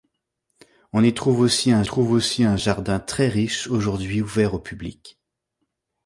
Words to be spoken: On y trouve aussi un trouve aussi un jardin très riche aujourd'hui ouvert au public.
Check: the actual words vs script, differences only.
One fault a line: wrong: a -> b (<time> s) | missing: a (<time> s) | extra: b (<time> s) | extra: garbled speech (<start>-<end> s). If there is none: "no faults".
no faults